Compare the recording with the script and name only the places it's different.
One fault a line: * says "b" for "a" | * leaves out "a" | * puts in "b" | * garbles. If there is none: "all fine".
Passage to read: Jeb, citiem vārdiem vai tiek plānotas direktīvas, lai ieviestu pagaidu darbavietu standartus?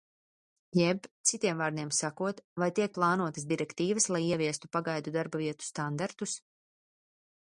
* puts in "sakot"